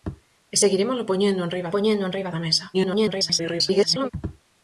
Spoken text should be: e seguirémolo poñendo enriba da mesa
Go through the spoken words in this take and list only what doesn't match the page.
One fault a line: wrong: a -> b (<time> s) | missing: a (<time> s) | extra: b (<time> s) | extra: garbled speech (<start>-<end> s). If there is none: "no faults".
extra: poñendo enriba (1.7 s)
extra: garbled speech (2.7-4.1 s)